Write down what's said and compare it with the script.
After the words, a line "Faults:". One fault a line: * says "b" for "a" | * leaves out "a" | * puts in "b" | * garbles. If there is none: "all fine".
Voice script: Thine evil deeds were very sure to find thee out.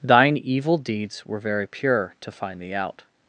Thine evil deeds were very pure to find thee out.
Faults:
* says "pure" for "sure"